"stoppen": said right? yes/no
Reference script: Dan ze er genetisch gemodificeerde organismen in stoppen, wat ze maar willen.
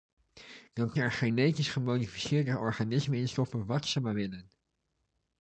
yes